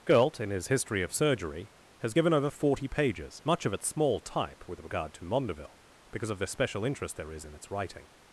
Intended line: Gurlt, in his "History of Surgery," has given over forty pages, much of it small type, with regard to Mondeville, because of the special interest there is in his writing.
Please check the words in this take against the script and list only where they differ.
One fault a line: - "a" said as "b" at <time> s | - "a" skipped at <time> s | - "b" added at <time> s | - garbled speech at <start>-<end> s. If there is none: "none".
- "his" said as "its" at 7.5 s